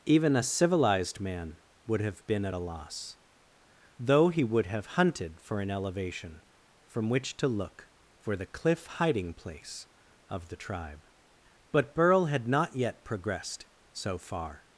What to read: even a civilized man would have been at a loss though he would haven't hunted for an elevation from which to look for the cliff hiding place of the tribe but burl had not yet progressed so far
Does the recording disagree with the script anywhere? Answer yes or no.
yes